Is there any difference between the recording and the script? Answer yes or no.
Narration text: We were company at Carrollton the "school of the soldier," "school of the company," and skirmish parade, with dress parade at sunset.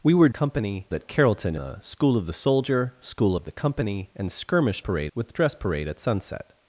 no